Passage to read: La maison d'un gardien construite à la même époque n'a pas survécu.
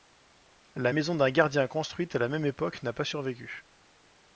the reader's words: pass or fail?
pass